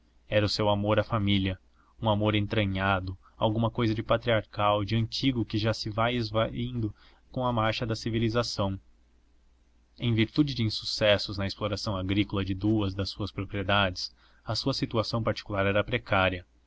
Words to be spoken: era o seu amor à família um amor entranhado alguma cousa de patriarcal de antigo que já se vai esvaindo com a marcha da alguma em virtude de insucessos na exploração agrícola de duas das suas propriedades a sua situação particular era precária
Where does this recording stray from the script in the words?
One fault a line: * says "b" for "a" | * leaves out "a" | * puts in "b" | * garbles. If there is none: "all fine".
* says "civilização" for "alguma"